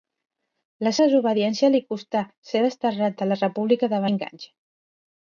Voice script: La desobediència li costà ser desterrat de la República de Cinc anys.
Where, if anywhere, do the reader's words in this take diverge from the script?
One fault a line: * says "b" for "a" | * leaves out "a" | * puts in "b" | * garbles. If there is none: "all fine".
all fine